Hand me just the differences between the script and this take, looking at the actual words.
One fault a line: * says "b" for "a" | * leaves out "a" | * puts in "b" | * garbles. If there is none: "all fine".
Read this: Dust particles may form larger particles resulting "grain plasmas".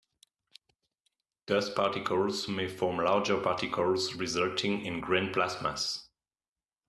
* puts in "in"